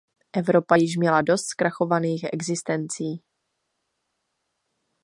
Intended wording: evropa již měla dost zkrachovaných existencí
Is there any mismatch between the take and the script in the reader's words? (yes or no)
no